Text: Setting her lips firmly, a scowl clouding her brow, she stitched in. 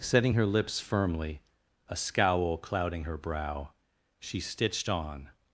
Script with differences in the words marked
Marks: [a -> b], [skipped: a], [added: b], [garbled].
Setting her lips firmly, a scowl clouding her brow, she stitched [in. -> on]